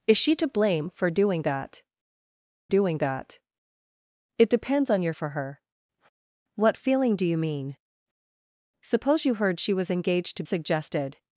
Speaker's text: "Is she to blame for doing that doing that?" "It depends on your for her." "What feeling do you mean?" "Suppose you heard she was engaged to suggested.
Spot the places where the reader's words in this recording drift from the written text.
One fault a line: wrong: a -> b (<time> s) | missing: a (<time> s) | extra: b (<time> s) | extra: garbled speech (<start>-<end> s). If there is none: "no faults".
no faults